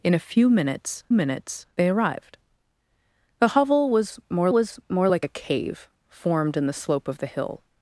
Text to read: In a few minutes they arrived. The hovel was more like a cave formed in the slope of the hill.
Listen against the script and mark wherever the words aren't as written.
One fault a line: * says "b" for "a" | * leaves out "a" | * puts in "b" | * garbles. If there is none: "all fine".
* puts in "minutes"
* puts in "was more"